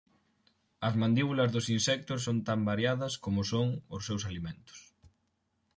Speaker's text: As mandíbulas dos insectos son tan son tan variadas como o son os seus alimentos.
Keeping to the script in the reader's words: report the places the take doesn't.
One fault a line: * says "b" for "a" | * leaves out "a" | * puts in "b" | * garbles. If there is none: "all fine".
* leaves out "son tan"